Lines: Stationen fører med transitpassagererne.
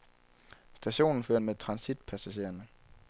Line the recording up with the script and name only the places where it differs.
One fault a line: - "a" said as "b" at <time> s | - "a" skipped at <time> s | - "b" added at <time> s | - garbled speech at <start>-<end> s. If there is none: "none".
none